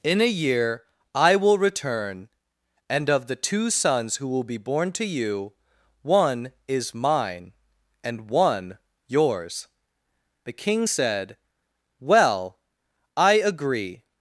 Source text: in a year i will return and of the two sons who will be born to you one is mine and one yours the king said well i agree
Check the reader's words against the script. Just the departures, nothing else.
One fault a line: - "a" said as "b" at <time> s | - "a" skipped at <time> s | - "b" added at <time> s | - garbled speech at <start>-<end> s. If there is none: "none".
none